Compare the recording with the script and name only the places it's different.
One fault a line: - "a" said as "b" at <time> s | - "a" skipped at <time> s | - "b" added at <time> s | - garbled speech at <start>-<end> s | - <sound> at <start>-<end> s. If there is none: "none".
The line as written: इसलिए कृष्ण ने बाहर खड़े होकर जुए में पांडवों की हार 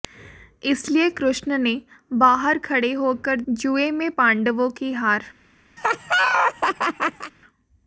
- laugh at 5.8-7.3 s